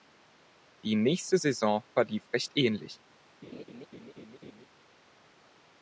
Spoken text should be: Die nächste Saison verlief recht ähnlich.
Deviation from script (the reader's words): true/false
false